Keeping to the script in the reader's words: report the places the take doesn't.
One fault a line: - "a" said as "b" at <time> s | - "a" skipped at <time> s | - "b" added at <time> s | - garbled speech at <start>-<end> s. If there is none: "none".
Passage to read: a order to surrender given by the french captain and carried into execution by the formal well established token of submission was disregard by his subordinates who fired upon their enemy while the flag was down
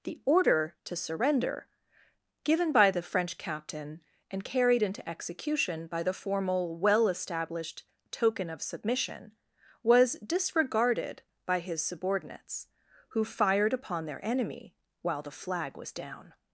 - "a" said as "the" at 0.0 s
- "disregard" said as "disregarded" at 10.2 s